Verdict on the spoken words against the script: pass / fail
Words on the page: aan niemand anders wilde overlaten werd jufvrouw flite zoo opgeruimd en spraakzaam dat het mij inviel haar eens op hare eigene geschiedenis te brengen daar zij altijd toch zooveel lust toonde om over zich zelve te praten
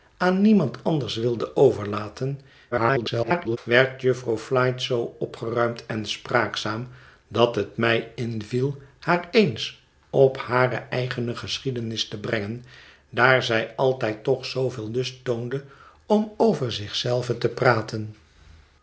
fail